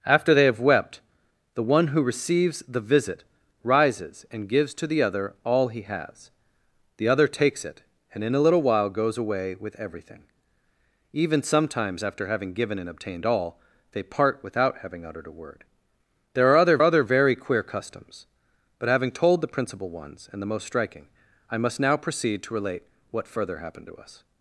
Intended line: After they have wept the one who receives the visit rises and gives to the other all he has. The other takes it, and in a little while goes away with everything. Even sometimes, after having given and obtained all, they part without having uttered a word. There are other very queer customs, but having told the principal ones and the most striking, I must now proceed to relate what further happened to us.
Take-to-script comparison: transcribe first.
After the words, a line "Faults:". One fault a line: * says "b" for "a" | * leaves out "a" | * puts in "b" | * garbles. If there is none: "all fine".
After they have wept the one who receives the visit rises and gives to the other all he has. The other takes it, and in a little while goes away with everything. Even sometimes, after having given and obtained all, they part without having uttered a word. There are other other very queer customs, but having told the principal ones and the most striking, I must now proceed to relate what further happened to us.
Faults:
* puts in "other"